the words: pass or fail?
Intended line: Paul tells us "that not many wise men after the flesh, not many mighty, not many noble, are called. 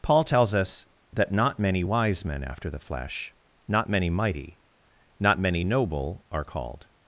pass